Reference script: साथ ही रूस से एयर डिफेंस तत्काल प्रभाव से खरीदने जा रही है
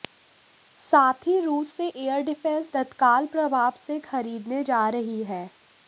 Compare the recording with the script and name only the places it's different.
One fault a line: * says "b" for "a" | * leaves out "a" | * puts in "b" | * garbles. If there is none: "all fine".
all fine